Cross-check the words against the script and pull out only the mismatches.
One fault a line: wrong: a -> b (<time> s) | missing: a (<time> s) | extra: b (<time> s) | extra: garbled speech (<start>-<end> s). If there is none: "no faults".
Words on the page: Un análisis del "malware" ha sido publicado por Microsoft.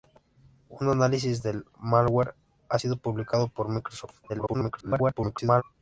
extra: garbled speech (4.3-5.6 s)